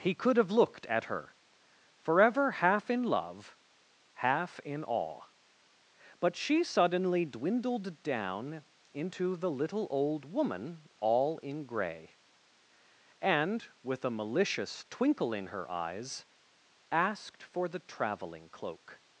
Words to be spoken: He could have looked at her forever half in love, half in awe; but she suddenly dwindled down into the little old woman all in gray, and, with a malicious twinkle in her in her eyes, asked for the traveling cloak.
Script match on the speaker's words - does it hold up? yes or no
no